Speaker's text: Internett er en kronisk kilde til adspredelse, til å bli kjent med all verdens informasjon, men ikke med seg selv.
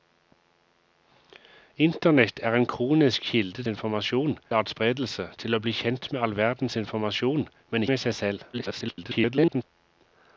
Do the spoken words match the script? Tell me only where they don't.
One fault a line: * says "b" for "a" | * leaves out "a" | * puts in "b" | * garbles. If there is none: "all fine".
* says "informasjon" for "til"
* leaves out "ikke"
* garbles